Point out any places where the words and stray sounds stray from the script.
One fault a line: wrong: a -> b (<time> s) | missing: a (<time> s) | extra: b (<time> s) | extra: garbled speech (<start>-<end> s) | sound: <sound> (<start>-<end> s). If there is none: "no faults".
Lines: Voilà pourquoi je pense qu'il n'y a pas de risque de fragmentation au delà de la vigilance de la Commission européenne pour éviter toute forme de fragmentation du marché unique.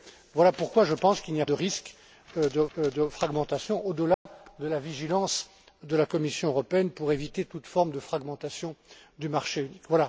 missing: pas (1.4 s)
extra: de (2.8 s)
sound: dropout (4.1-4.3 s)